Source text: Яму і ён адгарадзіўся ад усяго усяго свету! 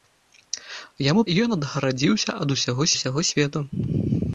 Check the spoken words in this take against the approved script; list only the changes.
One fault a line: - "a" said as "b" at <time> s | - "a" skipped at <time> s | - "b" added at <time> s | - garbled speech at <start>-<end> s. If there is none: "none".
none